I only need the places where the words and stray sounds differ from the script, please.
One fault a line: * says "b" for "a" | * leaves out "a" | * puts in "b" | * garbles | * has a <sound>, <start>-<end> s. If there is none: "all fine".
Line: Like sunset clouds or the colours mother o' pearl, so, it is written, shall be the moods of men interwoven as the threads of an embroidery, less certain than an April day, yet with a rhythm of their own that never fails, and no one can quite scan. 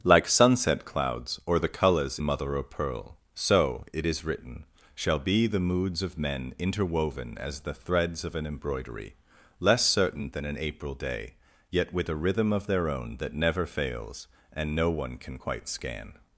all fine